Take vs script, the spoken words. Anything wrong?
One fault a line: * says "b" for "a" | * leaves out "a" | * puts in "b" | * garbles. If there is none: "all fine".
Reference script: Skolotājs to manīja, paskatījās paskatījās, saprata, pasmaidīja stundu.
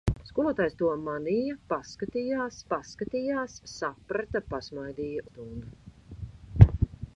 all fine